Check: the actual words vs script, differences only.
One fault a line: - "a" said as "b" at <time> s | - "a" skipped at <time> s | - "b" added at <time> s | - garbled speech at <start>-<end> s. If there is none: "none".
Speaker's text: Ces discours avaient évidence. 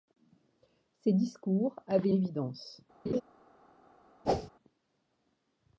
none